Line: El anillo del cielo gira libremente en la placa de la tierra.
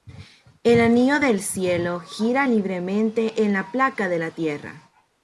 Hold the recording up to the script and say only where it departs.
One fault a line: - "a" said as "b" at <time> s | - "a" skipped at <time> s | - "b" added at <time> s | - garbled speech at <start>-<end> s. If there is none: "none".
none